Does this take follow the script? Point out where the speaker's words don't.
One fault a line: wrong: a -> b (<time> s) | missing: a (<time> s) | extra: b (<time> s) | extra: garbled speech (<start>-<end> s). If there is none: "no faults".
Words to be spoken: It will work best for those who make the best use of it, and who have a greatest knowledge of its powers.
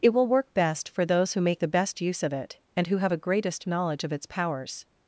no faults